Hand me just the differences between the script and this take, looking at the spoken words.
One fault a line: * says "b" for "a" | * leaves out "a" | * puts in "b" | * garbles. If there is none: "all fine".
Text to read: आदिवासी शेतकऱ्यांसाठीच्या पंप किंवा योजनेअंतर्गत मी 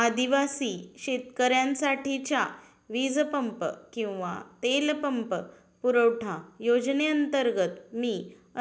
* puts in "वीज"
* puts in "तेल पंप पुरवठा"